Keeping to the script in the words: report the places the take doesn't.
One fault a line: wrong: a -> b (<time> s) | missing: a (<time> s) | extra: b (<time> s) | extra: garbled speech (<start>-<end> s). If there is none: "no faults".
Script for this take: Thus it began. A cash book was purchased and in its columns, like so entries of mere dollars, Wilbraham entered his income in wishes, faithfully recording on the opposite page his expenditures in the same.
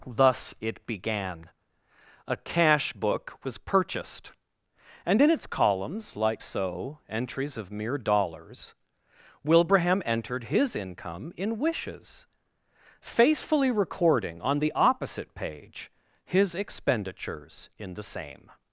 no faults